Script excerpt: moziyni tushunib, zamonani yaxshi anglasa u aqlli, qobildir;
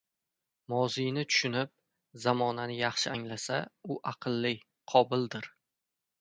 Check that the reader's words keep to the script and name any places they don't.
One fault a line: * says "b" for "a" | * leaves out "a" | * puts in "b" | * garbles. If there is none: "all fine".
all fine